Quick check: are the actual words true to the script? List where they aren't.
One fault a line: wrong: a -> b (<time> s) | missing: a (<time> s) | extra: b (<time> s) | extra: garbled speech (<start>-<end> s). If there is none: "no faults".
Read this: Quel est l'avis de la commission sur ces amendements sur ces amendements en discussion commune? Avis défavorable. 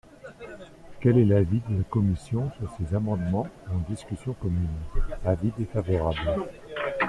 missing: sur ces amendements (3.5 s)